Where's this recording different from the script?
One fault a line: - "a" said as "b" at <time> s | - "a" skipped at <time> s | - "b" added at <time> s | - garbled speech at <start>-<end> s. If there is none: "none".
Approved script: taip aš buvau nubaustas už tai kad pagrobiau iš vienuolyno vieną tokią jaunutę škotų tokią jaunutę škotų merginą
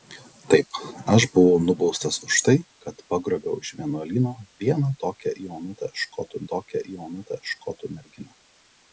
none